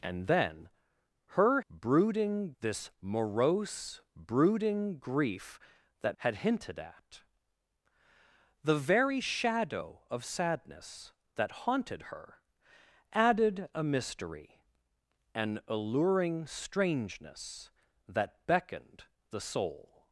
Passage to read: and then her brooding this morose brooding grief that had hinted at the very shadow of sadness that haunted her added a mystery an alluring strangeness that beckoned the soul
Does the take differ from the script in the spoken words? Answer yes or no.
no